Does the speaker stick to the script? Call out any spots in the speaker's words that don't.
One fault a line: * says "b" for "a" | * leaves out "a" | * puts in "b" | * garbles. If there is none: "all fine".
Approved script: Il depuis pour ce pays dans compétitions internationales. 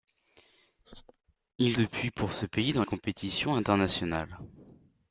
all fine